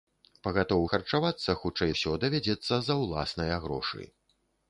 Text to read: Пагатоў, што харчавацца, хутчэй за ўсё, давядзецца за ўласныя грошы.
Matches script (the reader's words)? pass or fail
fail